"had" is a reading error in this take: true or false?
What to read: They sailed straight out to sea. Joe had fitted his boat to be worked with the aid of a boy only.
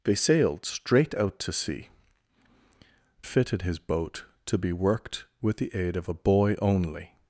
true